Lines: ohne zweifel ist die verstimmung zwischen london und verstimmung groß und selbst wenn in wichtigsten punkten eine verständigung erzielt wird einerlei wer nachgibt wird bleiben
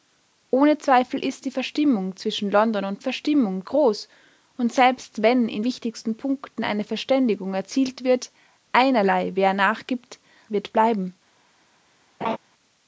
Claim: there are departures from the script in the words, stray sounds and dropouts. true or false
true